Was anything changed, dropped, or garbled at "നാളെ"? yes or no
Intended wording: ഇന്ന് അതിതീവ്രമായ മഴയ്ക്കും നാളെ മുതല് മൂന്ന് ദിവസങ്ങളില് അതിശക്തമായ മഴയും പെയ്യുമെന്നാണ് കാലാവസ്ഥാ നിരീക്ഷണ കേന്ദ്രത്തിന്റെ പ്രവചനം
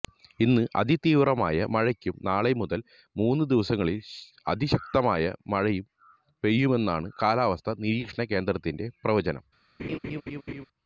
no